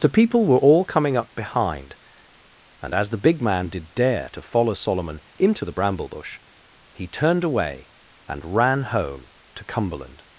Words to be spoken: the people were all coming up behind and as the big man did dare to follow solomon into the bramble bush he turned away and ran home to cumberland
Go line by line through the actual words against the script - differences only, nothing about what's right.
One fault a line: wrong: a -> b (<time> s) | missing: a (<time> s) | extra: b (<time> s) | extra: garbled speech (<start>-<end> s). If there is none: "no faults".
no faults